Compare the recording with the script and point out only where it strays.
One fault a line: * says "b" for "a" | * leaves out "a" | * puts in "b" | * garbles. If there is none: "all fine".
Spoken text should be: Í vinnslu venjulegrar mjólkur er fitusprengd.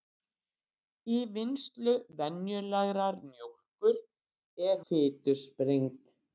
all fine